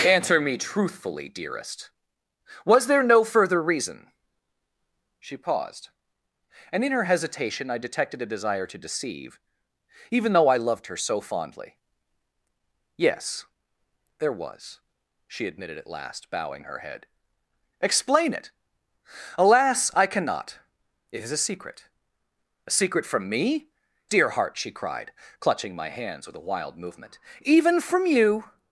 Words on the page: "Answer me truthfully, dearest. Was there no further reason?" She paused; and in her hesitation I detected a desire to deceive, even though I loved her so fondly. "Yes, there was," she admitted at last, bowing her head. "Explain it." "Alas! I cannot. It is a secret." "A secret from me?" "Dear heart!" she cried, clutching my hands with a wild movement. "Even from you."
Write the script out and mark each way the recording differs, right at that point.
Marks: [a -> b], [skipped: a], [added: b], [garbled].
"Answer me truthfully, dearest. Was there no further reason?" She paused; and in her hesitation I detected a desire to deceive, even though I loved her so fondly. "Yes, there was," she admitted at last, bowing her head. "Explain it." "Alas! I cannot. It is a secret." "A secret from me?" "Dear heart!" she cried, clutching my hands with a wild movement. "Even from you."